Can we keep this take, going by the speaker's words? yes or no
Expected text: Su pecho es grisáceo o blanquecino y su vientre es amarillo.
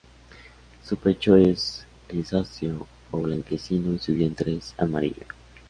yes